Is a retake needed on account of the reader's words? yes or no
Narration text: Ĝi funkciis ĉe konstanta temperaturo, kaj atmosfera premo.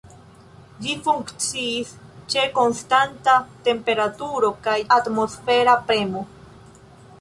no